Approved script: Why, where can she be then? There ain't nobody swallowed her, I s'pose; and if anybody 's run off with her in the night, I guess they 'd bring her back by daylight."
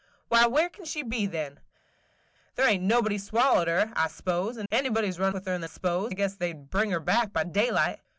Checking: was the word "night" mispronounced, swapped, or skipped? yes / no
yes